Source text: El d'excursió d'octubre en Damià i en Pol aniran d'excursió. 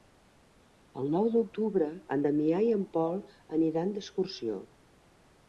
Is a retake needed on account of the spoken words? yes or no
yes